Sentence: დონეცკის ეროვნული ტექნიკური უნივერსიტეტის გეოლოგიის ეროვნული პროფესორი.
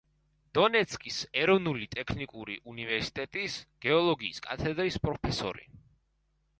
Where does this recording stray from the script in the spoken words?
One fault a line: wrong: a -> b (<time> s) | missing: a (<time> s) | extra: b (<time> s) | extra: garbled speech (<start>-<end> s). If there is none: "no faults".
wrong: ეროვნული -> კათედრის (4.5 s)